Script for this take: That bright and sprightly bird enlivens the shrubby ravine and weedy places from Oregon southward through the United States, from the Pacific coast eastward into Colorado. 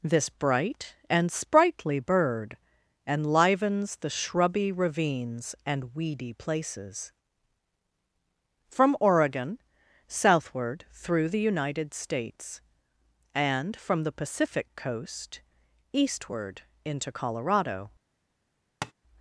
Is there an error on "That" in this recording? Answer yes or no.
yes